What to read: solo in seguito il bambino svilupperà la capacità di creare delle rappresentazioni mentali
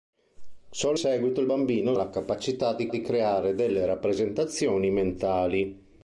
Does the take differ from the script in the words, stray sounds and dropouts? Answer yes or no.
yes